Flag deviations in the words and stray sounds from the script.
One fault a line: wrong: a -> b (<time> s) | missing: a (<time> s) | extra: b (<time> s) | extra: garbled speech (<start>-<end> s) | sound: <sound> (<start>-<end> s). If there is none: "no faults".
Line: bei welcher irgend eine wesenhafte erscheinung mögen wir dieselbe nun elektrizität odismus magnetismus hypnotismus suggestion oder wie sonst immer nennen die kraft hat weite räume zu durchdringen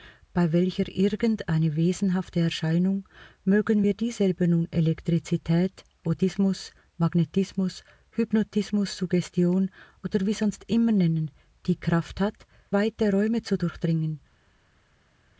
no faults